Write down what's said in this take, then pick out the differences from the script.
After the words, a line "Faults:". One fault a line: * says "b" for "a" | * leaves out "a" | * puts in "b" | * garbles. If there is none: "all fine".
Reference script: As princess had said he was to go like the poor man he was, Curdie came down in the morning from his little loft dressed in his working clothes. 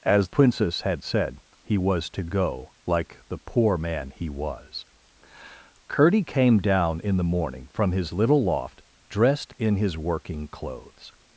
As princess had said he was to go like the poor man he was, Curdie came down in the morning from his little loft dressed in his working clothes.
Faults:
all fine